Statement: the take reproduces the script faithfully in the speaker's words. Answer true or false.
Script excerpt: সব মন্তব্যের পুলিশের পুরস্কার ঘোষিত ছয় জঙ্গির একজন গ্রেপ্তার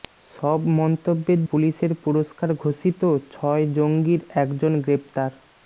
true